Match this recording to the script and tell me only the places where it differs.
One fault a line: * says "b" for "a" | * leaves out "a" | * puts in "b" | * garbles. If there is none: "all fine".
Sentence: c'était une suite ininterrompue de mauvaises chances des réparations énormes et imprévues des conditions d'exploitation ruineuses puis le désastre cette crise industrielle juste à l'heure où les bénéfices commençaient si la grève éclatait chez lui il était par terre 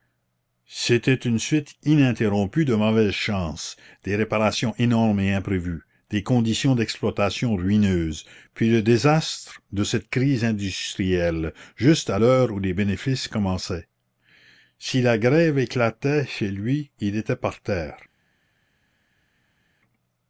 * puts in "de"